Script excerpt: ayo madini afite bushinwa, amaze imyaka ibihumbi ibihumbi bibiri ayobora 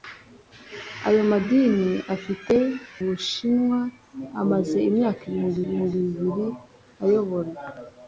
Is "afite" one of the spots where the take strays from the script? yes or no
no